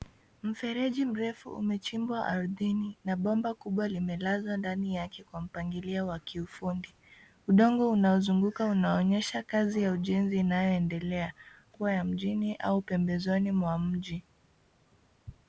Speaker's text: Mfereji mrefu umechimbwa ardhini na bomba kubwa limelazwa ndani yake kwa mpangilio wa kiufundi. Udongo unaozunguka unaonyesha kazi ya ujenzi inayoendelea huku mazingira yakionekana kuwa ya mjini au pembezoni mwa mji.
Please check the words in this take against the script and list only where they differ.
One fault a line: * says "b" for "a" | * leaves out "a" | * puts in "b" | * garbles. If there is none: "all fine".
* leaves out "huku mazingira yakionekana"